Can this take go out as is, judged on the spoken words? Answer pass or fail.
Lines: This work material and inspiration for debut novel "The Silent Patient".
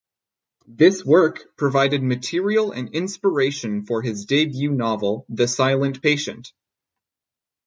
fail